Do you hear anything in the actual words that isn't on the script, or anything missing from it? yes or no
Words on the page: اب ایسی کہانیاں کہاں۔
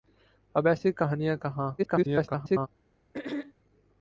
yes